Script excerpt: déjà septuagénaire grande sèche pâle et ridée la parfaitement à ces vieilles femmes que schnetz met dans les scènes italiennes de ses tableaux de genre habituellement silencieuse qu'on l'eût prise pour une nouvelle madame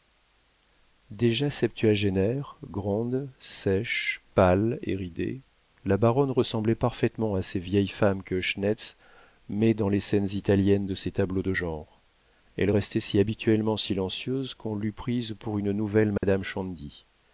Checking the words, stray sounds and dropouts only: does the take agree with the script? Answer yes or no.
no